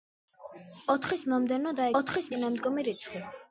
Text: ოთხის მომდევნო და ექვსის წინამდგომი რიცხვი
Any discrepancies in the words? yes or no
yes